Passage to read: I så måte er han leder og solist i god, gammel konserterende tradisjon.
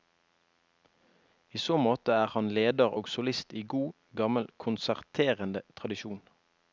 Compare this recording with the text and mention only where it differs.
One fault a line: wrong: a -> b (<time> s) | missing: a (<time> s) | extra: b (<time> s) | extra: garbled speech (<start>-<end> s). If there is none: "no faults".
no faults